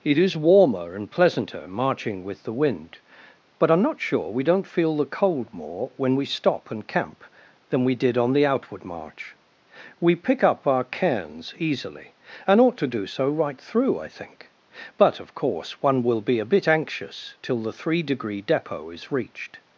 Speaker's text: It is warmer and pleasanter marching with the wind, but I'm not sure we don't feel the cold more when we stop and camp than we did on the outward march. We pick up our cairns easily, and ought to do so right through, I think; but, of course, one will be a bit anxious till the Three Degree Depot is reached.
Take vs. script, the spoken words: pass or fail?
pass